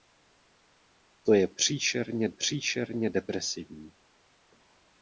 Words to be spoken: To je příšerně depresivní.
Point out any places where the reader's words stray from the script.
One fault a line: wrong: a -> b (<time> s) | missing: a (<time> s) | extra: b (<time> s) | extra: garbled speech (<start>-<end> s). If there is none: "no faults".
extra: příšerně (2.3 s)